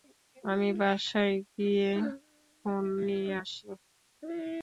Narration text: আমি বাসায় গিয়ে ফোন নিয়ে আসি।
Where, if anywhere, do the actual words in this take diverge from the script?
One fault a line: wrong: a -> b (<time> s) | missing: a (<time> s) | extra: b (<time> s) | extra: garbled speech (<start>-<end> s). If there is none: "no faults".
no faults